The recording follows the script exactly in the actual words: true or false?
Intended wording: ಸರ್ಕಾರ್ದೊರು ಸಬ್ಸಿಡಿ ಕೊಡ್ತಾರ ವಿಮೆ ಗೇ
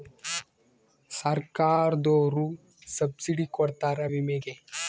true